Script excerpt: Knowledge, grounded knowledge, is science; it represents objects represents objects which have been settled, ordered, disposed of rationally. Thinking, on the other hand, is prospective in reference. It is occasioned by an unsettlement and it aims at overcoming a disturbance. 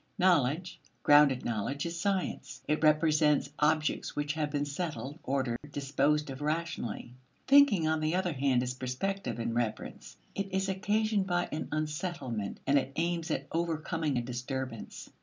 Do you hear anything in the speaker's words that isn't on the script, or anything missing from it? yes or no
yes